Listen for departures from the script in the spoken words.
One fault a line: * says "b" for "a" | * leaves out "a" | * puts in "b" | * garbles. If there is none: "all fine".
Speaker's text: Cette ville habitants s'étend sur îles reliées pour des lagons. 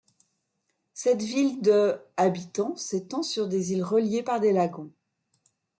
* puts in "de"
* puts in "des"
* says "par" for "pour"